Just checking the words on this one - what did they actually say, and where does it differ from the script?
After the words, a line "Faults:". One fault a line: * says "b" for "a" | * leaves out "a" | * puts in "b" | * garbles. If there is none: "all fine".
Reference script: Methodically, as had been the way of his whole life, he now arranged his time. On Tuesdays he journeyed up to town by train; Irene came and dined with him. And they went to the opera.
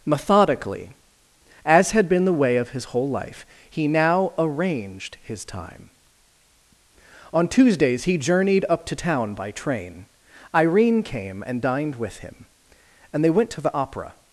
Methodically, as had been the way of his whole life, he now arranged his time. On Tuesdays he journeyed up to town by train; Irene came and dined with him. And they went to the opera.
Faults:
all fine